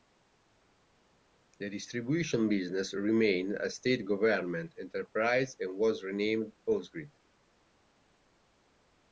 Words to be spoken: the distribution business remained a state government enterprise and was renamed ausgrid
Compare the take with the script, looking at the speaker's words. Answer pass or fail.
pass